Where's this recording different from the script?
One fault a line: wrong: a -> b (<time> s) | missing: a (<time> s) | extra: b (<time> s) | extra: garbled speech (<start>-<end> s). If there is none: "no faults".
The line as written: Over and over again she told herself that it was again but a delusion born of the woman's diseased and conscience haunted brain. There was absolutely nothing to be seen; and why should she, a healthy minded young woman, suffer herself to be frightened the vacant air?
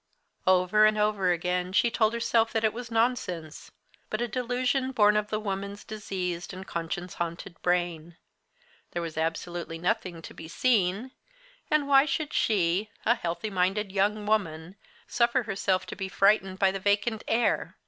wrong: again -> nonsense (2.9 s)
extra: by (16.6 s)